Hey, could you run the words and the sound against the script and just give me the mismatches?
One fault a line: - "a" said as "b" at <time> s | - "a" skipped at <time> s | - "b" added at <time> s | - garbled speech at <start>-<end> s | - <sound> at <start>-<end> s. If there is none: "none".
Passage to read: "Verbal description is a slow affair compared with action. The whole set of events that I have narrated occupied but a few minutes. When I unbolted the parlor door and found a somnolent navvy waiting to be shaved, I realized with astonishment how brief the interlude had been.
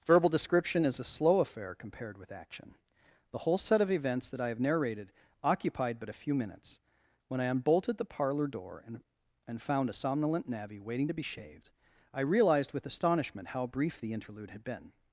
- "and" added at 9.5 s